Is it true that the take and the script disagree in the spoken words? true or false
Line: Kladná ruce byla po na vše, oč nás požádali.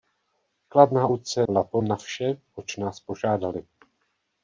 false